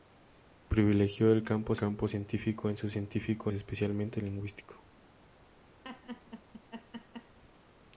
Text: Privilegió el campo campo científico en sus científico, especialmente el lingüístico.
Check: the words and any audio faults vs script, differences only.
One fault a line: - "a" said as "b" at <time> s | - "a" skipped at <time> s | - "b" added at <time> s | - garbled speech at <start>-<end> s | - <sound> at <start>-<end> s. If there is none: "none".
- laugh at 5.8-7.4 s